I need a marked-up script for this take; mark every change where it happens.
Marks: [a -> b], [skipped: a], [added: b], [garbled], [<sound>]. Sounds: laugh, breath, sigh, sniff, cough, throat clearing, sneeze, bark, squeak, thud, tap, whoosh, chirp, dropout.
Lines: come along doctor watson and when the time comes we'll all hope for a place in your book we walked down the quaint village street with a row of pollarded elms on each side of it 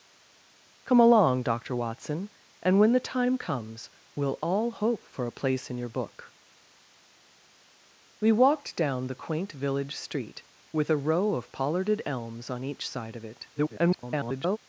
come along doctor watson and when the time comes we'll all hope for a place in your book we walked down the quaint village street with a row of pollarded elms on each side of it [garbled]